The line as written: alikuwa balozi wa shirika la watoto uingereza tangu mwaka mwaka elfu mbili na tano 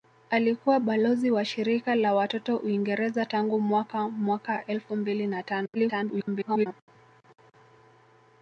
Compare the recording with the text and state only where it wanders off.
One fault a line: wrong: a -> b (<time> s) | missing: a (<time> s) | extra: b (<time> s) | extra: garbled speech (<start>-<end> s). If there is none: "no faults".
extra: garbled speech (5.7-6.7 s)